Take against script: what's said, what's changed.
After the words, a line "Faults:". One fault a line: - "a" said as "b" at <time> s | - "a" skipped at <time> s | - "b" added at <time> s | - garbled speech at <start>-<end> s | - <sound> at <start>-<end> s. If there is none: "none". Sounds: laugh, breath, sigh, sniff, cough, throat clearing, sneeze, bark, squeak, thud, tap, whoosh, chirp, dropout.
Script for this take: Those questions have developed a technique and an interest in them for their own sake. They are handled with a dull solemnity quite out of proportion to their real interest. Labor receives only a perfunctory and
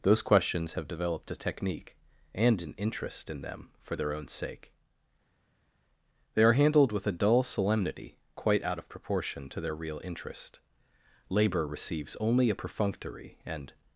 Those questions have developed a technique and an interest in them for their own sake. They are handled with a dull solemnity quite out of proportion to their real interest. Labor receives only a perfunctory and
Faults:
none